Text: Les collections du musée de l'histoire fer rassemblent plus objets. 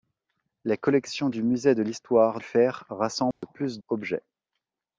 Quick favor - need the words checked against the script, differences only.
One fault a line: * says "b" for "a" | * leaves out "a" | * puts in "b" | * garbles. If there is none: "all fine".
all fine